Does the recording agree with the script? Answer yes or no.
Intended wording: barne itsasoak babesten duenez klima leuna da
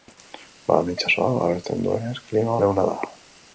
yes